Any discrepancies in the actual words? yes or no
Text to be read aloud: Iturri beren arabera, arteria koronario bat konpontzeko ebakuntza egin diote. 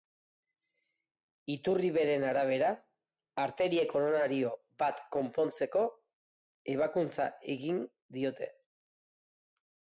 no